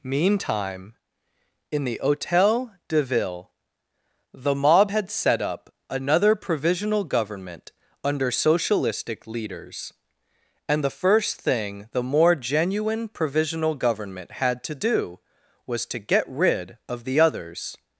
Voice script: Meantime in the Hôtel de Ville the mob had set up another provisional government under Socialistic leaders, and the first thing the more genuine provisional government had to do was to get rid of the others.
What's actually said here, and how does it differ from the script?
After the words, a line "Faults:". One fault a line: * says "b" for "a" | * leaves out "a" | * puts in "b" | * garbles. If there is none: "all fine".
Meantime in the Hôtel de Ville the mob had set up another provisional government under Socialistic leaders, and the first thing the more genuine provisional government had to do was to get rid of the others.
Faults:
all fine